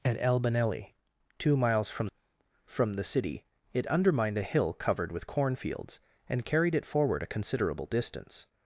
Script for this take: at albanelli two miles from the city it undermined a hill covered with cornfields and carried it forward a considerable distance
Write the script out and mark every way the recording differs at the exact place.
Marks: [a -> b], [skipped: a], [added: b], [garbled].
at albanelli two miles from [added: from] the city it undermined a hill covered with cornfields and carried it forward a considerable distance